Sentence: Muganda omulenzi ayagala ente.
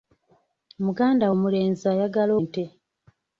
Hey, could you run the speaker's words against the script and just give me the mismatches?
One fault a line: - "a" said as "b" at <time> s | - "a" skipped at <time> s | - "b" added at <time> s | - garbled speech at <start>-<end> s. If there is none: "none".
none